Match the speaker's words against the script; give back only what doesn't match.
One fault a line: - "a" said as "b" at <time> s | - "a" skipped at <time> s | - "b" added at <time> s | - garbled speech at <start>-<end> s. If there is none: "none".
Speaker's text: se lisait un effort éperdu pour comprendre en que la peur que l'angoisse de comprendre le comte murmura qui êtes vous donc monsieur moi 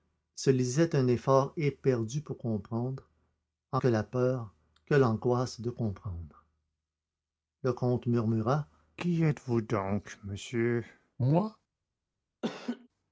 none